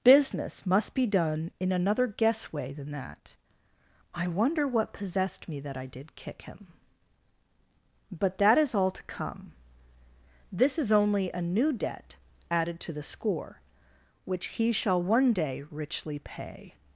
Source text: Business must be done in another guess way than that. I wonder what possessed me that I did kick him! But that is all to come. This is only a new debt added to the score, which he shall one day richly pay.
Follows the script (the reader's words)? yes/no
yes